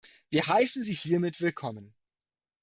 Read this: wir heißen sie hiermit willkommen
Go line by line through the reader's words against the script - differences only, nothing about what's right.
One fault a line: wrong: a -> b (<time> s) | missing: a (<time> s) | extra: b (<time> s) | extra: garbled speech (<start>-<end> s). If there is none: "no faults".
no faults